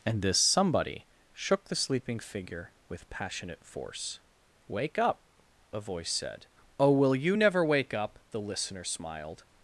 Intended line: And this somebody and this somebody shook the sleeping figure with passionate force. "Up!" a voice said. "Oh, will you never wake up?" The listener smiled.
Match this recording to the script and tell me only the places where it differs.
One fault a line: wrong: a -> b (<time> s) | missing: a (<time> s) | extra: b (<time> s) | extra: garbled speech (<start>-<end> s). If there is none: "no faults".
missing: and this somebody (1.1 s)
extra: Wake (4.7 s)